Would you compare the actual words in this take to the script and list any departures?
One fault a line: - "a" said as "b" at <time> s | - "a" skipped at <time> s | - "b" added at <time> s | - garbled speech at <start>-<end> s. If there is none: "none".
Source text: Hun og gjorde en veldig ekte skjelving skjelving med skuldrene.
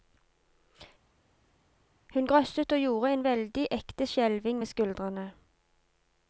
- "grøsset" added at 2.2 s
- "skjelving" skipped at 4.6 s